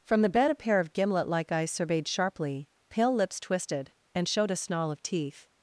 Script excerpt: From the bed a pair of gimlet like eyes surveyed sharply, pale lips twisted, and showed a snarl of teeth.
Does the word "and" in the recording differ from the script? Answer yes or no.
no